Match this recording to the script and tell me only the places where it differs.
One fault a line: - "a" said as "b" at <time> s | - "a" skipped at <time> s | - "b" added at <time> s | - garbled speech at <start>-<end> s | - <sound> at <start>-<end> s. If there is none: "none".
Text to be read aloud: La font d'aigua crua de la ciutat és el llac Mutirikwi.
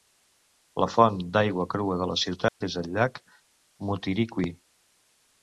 - dropout at 2.5-2.6 s